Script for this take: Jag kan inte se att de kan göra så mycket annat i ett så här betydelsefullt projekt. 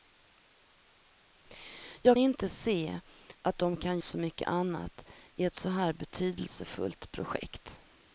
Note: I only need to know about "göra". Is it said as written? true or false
false